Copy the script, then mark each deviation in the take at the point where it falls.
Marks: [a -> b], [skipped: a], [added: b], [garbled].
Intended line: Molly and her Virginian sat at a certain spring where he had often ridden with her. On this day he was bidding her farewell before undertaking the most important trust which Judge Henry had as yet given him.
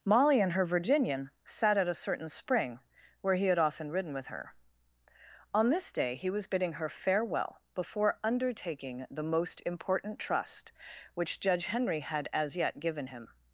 Molly and her Virginian sat at a certain spring where he had often ridden with her. On this day he was bidding her farewell before undertaking the most important trust which Judge Henry had as yet given him.